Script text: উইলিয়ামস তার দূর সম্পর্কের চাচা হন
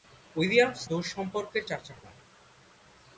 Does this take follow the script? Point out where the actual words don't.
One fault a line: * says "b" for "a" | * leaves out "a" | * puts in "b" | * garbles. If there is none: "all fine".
* leaves out "তার"